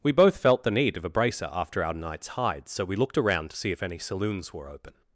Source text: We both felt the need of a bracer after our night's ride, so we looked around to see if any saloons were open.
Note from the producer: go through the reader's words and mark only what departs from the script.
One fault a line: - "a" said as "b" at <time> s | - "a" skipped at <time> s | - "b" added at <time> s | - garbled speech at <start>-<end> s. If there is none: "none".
- "ride" said as "hide" at 2.3 s